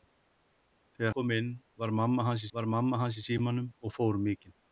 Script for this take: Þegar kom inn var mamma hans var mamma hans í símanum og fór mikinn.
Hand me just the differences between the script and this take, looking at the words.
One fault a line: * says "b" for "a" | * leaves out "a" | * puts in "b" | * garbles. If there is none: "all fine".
all fine